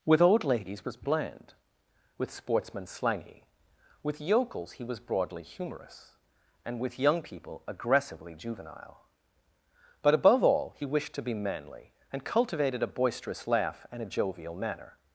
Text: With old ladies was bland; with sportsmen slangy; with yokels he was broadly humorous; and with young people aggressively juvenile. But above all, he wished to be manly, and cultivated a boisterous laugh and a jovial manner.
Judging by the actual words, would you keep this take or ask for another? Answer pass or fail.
pass